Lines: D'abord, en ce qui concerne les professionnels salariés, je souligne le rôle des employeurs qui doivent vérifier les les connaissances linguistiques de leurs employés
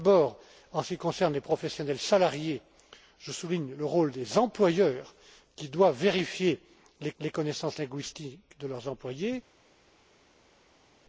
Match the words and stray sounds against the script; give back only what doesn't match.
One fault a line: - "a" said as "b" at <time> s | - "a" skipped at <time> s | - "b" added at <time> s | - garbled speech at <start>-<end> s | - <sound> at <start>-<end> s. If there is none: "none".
none